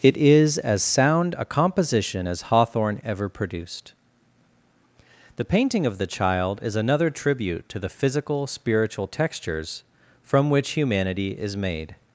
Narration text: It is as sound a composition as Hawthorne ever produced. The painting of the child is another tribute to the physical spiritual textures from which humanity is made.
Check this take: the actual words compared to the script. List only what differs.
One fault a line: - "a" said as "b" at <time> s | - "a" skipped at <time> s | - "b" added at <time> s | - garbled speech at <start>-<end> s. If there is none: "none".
none